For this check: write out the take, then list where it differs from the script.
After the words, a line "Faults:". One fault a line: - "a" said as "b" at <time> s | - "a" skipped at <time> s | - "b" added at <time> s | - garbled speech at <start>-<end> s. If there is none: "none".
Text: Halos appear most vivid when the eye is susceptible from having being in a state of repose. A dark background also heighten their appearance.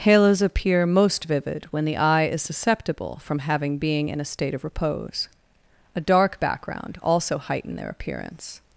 Halos appear most vivid when the eye is susceptible from having being in a state of repose. A dark background also heighten their appearance.
Faults:
none